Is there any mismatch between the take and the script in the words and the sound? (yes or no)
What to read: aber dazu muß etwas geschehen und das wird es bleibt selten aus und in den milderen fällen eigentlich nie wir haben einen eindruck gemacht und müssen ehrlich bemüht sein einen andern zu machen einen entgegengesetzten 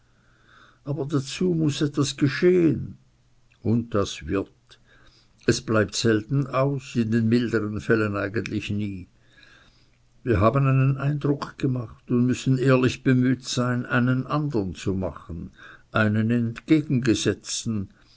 yes